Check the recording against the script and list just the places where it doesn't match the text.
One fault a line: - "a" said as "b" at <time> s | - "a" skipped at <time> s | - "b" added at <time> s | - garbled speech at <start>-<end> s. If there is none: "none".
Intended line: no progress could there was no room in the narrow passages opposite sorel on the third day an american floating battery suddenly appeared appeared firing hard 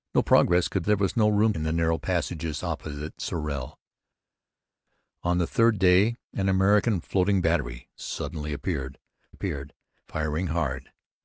none